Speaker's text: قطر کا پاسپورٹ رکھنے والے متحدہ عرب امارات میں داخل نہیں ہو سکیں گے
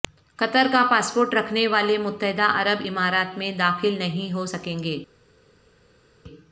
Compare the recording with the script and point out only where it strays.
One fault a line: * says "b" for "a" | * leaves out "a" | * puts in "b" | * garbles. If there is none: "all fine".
all fine